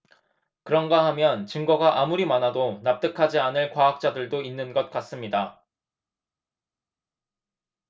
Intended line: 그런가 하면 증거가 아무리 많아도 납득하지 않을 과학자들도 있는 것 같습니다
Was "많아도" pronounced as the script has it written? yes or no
yes